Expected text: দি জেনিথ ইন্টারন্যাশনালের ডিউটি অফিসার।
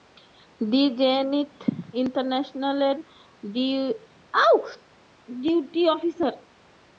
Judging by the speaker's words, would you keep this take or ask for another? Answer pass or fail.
pass